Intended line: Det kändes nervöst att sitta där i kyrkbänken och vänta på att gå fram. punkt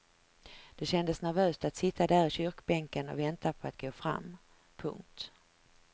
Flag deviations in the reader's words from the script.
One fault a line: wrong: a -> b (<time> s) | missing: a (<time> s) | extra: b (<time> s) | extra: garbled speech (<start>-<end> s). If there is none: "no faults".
no faults